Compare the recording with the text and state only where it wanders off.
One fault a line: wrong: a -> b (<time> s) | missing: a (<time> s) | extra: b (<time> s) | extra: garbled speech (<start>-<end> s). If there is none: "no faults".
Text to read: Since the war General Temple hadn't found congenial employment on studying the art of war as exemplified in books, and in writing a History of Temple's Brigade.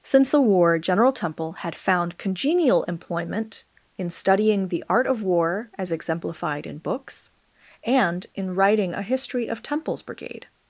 wrong: hadn't -> had (1.5 s)
wrong: on -> in (4.0 s)